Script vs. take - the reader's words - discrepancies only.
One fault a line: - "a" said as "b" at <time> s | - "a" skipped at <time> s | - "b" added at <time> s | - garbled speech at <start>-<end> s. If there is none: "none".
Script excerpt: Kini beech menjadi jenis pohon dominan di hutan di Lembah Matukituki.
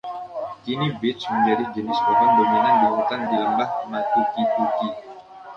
none